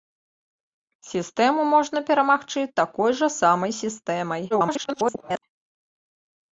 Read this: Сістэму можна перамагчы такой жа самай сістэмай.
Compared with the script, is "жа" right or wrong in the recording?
right